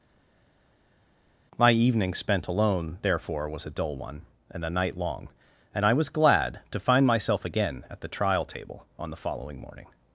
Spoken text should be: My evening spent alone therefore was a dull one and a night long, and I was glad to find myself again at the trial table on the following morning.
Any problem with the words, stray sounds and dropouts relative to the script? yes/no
no